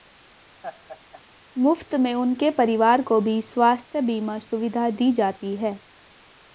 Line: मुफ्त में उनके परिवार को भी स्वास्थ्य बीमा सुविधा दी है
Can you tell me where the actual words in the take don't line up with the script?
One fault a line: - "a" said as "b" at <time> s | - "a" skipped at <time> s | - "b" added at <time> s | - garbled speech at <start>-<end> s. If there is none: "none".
- "जाती" added at 5.1 s